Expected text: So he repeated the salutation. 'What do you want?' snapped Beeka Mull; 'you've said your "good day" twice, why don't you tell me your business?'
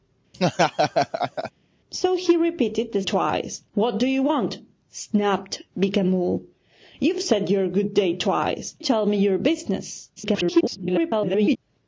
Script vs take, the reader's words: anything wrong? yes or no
yes